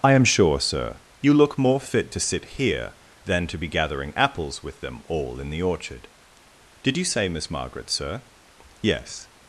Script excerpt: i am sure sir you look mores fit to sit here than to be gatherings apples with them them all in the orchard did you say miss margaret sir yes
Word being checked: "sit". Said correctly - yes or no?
yes